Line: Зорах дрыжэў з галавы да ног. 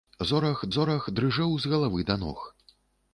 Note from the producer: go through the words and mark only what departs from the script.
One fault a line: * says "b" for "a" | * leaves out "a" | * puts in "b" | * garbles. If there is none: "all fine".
* puts in "зорах"